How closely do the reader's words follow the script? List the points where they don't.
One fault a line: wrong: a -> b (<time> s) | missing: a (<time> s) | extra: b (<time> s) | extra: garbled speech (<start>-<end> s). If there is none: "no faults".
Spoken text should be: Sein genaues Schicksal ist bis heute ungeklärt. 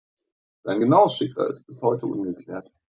no faults